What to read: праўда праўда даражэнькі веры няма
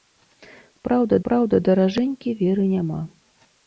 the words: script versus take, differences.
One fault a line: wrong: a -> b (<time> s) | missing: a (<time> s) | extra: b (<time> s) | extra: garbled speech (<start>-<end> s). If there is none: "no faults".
no faults